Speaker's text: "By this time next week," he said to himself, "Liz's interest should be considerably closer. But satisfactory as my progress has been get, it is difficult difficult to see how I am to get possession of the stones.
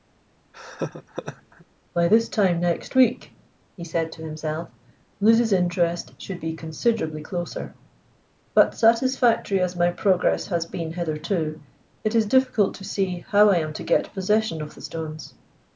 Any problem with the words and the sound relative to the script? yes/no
yes